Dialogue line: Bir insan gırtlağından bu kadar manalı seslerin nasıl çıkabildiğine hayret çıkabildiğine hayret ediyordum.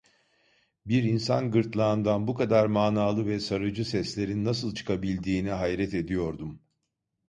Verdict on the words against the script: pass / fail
fail